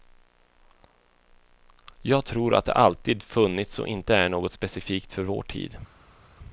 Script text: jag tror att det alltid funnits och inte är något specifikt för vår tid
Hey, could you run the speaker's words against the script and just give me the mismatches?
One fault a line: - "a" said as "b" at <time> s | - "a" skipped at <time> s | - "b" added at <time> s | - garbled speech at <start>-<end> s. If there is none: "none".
none